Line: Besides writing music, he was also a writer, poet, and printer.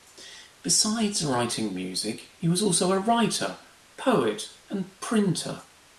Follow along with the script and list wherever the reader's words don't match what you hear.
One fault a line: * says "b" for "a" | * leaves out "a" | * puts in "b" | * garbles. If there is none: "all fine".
all fine